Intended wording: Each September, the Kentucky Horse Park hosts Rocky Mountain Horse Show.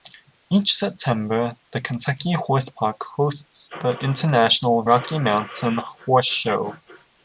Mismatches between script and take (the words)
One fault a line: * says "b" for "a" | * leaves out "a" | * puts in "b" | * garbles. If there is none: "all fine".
* puts in "the International"